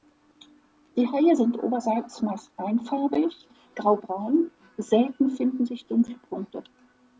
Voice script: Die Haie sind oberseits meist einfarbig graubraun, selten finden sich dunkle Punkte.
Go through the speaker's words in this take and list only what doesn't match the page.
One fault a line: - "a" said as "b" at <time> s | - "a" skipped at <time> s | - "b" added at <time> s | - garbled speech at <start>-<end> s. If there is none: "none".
none